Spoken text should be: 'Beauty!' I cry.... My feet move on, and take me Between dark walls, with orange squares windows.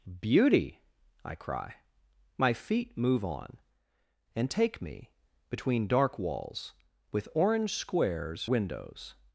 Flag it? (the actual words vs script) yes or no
no